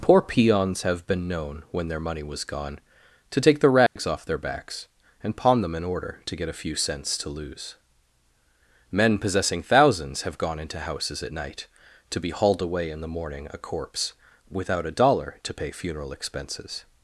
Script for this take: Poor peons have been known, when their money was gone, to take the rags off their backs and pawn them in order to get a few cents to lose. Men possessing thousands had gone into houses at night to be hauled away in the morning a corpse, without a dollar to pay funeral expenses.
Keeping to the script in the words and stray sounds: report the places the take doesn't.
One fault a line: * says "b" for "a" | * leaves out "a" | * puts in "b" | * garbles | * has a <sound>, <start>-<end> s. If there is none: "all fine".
* has a dropout, 3.9-4.0 s
* says "have" for "had"